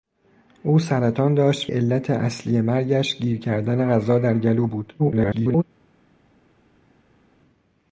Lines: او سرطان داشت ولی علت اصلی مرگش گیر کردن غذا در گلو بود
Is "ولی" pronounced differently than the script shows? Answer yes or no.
yes